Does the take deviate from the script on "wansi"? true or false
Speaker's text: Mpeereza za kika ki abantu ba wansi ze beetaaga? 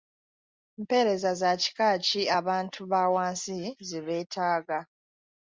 false